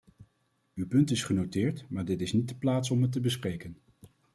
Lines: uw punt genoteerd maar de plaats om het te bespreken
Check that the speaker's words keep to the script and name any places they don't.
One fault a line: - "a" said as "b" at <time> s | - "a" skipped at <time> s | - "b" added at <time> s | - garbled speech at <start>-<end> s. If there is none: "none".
- "is" added at 1.1 s
- "dit is niet" added at 2.0 s